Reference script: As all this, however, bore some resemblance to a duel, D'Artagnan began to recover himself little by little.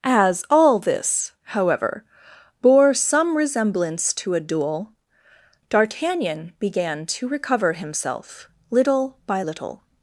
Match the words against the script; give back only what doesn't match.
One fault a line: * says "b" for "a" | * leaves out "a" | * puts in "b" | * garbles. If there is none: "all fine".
all fine